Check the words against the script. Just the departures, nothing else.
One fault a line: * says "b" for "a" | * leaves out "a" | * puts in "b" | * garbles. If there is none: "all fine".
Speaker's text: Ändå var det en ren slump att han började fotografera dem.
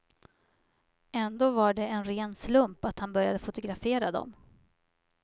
all fine